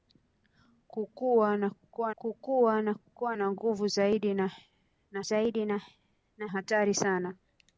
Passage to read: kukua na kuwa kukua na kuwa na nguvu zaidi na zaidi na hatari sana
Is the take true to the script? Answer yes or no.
yes